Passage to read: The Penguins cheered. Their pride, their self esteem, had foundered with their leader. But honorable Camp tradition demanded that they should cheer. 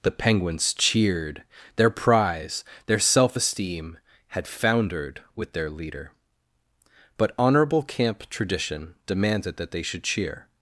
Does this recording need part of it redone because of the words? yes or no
yes